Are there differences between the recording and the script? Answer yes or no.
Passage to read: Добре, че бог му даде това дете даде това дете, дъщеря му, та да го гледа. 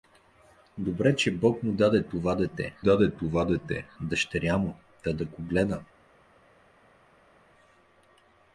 no